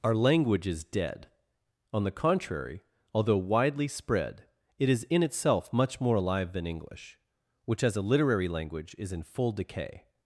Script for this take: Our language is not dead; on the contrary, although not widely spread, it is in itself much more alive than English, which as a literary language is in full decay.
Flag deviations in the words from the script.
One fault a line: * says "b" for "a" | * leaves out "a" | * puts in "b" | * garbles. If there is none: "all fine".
* leaves out "not"
* leaves out "not"